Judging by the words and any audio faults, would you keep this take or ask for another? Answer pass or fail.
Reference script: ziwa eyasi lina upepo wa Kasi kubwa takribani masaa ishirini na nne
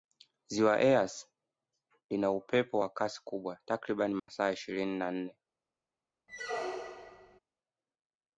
fail